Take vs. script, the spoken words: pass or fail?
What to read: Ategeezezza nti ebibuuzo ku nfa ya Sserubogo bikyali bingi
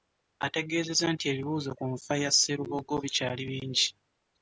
pass